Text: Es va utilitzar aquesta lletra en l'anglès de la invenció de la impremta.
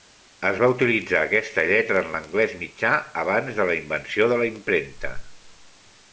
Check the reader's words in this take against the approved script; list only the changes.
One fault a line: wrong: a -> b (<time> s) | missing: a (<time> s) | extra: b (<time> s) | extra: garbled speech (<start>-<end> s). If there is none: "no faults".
extra: mitjà abans (2.6 s)